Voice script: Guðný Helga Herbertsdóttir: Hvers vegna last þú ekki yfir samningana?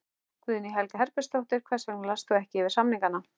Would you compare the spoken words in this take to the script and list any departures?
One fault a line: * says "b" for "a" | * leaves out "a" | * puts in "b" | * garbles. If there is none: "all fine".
all fine